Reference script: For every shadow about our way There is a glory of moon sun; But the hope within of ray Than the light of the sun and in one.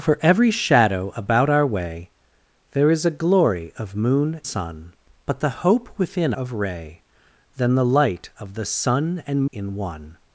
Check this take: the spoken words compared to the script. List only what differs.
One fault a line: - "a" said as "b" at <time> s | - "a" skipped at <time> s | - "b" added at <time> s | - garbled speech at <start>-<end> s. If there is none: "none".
none